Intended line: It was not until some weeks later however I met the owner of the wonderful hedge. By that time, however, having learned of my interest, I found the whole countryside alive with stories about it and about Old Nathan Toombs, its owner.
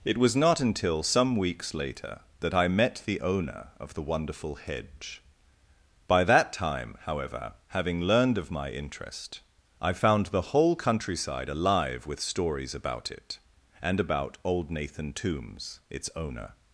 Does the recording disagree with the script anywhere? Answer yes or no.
yes